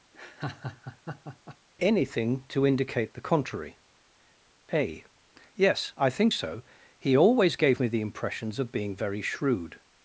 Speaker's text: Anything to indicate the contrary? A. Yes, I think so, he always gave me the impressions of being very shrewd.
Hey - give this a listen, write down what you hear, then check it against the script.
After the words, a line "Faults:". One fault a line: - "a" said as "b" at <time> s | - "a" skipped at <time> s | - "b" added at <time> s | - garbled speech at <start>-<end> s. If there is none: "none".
Anything to indicate the contrary? A. Yes, I think so, he always gave me the impressions of being very shrewd.
Faults:
none